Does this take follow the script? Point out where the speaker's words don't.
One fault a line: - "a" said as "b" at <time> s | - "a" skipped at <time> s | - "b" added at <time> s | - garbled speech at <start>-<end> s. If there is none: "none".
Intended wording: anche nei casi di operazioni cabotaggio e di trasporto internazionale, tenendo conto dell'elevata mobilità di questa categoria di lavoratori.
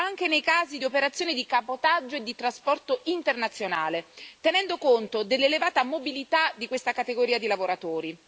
- "di" added at 1.3 s